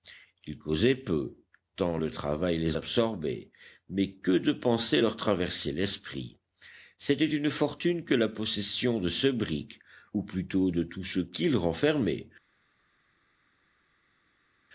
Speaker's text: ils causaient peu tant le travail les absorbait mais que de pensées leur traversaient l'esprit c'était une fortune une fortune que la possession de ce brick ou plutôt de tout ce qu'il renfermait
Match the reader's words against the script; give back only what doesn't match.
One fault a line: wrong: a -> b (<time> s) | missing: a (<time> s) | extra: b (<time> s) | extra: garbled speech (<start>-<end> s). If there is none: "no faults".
missing: une fortune (8.0 s)